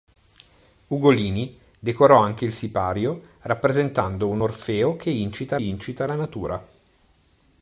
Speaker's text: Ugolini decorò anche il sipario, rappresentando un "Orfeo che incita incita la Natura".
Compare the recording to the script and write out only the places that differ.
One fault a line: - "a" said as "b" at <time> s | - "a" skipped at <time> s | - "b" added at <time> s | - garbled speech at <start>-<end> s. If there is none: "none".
none